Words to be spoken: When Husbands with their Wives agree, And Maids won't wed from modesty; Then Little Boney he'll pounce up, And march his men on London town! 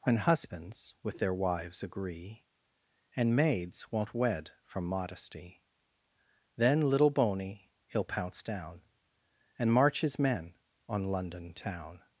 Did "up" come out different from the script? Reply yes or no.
yes